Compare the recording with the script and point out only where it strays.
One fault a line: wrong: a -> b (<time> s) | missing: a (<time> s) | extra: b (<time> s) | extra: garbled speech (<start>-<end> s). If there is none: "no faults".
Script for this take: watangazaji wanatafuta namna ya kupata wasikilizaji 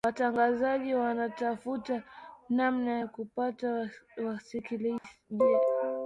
no faults